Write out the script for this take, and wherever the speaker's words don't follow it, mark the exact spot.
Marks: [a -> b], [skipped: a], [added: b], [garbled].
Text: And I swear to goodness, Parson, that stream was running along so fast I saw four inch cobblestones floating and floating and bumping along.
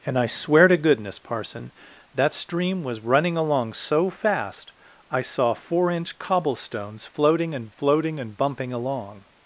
And I swear to goodness, Parson, that stream was running along so fast I saw four inch cobblestones floating and floating and bumping along.